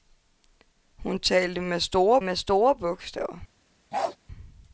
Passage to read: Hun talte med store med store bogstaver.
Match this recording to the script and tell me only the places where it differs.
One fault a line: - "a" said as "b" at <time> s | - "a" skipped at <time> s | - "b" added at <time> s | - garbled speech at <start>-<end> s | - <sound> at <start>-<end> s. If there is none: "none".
- bark at 3.9-4.2 s